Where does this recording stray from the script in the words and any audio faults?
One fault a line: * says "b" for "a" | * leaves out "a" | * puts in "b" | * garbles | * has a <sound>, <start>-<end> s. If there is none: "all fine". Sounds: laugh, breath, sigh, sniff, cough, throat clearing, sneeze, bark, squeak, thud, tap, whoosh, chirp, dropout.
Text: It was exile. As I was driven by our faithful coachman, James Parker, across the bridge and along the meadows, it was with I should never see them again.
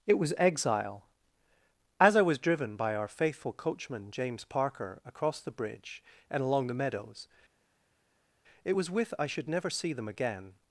all fine